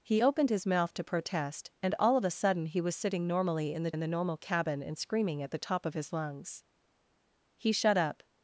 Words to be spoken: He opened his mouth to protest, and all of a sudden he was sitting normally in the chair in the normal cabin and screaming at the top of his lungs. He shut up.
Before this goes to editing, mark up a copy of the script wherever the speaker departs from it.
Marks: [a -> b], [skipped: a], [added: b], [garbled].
He opened his mouth to protest, and all of a sudden he was sitting normally in the [skipped: chair] in the normal cabin and screaming at the top of his lungs. He shut up.